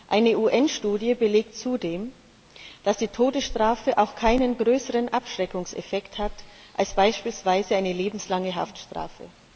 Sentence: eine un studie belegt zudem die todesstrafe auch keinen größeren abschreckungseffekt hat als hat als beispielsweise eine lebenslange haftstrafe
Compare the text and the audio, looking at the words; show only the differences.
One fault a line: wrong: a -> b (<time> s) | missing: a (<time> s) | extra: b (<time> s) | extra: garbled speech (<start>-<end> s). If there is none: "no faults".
extra: dass (2.8 s)
missing: hat als (6.9 s)